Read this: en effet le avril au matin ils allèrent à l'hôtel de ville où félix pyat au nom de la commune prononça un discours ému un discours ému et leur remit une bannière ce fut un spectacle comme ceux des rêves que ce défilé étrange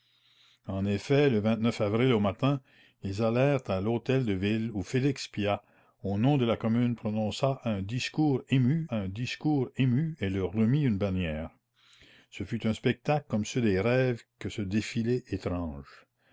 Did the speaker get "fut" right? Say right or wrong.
right